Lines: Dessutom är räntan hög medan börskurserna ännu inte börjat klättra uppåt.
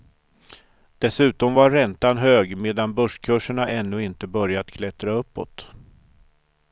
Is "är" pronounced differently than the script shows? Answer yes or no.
yes